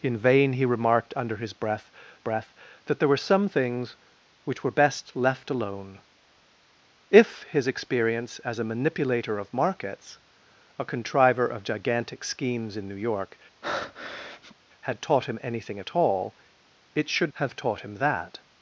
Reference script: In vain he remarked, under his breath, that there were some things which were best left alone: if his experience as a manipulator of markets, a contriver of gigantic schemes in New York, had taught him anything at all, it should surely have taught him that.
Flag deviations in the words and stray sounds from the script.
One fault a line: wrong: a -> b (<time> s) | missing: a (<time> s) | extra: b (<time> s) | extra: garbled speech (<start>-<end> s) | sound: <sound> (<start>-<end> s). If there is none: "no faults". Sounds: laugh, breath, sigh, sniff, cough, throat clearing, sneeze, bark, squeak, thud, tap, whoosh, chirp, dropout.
extra: breath (2.2 s)
sound: breath (13.6-14.6 s)
missing: surely (17.3 s)